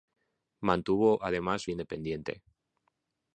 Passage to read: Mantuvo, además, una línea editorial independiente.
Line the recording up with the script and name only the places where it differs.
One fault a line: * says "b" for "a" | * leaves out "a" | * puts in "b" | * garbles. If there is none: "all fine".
* leaves out "una línea editorial"